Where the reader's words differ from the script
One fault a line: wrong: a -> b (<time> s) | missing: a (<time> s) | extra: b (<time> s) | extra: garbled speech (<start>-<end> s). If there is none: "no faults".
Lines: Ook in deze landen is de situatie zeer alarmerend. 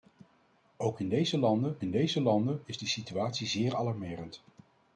extra: in deze landen (1.8 s)